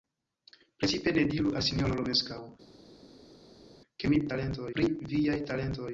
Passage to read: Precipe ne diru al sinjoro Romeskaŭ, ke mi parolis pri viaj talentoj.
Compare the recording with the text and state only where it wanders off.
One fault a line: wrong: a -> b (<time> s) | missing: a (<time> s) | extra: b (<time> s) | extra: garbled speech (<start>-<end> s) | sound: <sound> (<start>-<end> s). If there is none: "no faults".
wrong: parolis -> talentoj (4.3 s)